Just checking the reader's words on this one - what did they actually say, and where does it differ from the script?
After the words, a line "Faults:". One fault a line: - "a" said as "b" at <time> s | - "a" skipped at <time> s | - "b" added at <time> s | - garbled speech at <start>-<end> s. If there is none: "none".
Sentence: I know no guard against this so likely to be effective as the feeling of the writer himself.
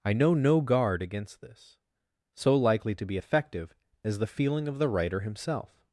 I know no guard against this so likely to be effective as the feeling of the writer himself.
Faults:
none